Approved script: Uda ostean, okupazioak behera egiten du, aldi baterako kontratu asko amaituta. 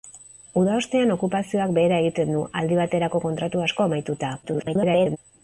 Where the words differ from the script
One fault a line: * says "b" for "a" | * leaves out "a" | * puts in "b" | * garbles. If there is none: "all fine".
* garbles